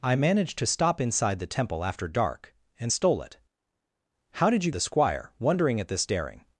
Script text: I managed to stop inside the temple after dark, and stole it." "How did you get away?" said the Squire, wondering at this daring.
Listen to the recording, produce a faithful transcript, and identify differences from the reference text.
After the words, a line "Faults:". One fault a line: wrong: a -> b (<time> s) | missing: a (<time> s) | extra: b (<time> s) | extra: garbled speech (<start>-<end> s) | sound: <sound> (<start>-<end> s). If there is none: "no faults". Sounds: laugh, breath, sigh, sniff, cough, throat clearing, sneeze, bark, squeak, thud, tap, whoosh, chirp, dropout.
I managed to stop inside the temple after dark, and stole it." "How did you the Squire, wondering at this daring.
Faults:
missing: get away said (4.7 s)